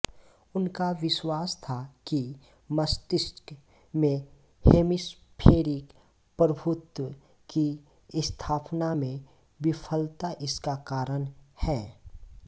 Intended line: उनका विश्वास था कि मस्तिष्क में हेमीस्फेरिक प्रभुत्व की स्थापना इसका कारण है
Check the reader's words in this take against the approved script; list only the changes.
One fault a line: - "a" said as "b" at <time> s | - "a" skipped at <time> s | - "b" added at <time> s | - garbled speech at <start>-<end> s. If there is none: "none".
- "में विफलता" added at 8.9 s